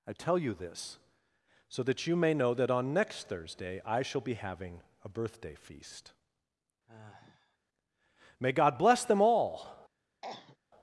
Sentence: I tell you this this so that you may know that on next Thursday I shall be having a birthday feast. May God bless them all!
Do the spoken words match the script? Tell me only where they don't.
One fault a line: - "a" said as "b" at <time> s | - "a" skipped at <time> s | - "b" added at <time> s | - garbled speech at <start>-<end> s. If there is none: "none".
- "this" skipped at 1.0 s